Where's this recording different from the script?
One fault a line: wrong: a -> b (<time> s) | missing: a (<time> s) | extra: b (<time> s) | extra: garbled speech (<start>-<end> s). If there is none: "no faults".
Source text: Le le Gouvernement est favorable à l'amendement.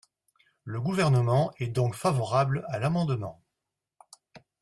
missing: le (0.8 s)
extra: donc (1.7 s)